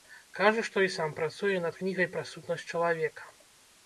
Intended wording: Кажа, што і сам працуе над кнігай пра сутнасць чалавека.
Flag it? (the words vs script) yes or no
no